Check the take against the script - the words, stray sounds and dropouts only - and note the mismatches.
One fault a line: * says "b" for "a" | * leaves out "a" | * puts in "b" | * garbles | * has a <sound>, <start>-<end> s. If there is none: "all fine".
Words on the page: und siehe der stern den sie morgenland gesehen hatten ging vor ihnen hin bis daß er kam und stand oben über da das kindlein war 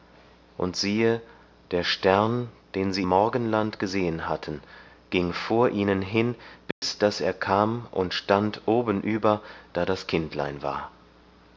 * has a dropout, 6.7-6.8 s